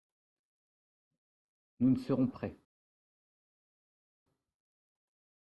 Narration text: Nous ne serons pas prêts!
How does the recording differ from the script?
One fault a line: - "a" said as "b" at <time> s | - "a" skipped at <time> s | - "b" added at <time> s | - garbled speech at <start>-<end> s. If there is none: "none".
- "pas" skipped at 2.3 s